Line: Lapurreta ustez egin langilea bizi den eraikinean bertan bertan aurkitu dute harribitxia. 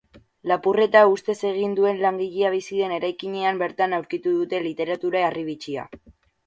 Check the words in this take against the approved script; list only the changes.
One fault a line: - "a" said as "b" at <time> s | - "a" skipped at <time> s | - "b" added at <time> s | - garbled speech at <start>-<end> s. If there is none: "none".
- "duen" added at 1.8 s
- "bertan" skipped at 4.0 s
- "literatura" added at 4.7 s